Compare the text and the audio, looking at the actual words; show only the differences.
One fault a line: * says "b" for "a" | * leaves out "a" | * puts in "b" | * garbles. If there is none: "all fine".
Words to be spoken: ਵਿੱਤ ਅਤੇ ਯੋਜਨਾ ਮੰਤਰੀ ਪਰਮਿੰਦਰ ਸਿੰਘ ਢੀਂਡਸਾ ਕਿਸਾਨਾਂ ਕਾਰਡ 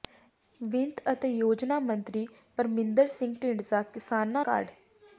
all fine